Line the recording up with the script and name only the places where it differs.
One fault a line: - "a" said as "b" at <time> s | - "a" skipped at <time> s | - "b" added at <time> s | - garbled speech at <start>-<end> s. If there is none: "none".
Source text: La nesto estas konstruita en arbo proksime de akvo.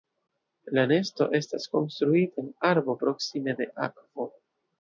none